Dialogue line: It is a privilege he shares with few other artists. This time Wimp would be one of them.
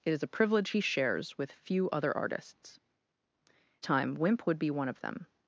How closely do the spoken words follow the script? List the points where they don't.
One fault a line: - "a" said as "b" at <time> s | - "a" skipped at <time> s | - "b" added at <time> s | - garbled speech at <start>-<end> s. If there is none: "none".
- "This" skipped at 2.8 s